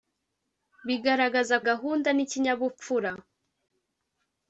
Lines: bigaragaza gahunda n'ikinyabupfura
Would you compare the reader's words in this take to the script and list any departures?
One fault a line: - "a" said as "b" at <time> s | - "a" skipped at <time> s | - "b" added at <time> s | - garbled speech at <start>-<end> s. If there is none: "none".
none